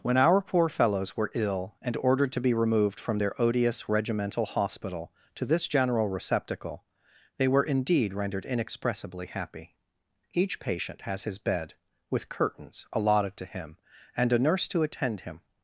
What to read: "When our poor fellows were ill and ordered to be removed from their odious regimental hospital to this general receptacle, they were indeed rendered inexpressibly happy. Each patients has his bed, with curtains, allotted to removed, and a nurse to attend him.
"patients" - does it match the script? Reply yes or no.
no